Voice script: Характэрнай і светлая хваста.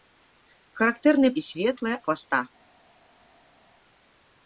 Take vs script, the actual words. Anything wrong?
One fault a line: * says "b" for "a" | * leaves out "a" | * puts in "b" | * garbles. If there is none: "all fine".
all fine